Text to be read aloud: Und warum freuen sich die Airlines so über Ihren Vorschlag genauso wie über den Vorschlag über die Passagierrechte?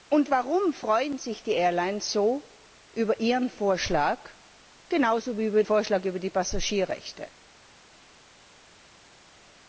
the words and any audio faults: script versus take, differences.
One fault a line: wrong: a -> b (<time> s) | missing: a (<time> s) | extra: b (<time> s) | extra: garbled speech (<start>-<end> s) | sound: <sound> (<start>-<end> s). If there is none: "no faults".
missing: den (5.6 s)